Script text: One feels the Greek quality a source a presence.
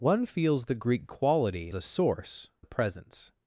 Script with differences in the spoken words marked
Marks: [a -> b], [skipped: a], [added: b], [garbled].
One feels the Greek quality a source a presence.